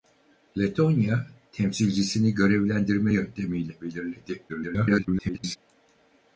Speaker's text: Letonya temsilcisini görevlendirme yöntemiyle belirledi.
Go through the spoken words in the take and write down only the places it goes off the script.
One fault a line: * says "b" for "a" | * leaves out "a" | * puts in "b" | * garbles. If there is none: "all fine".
* garbles